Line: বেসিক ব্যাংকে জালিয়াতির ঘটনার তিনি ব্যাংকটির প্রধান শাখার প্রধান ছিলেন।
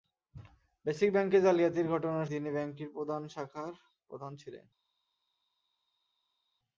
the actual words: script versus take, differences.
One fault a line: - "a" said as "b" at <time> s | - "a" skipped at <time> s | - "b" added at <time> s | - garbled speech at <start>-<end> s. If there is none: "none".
none